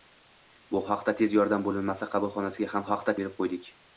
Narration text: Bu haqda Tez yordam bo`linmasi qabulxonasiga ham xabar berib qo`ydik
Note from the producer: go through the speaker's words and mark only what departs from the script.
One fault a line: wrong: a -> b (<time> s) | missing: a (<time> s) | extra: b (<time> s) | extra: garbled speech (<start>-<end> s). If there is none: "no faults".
wrong: xabar -> haqda (2.9 s)